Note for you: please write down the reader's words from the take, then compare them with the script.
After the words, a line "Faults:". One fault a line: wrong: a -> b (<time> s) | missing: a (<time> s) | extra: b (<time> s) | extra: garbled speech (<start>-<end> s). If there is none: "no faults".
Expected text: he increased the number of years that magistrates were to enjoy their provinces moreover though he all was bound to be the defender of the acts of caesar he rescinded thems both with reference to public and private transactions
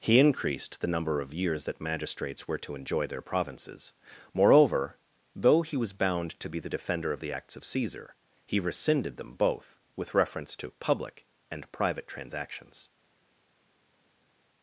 he increased the number of years that magistrates were to enjoy their provinces moreover though he was bound to be the defender of the acts of caesar he rescinded them both with reference to public and private transactions
Faults:
missing: all (5.8 s)
wrong: thems -> them (9.2 s)